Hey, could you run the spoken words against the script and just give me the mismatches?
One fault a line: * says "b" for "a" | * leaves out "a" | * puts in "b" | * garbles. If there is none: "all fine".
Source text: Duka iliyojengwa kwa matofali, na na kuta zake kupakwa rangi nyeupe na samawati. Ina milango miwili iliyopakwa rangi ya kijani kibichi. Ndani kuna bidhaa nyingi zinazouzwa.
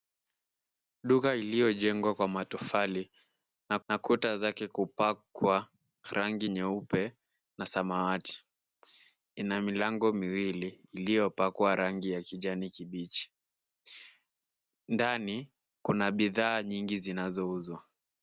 all fine